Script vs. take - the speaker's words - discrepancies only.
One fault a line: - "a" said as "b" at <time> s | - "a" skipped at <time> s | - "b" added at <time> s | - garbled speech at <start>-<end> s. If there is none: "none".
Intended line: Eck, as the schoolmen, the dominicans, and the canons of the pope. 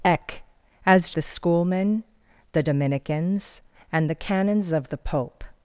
none